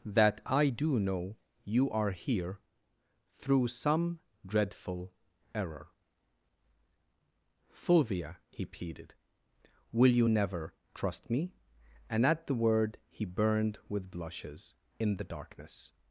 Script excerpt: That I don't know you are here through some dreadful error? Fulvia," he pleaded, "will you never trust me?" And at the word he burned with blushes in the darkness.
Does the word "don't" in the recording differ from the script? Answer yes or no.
yes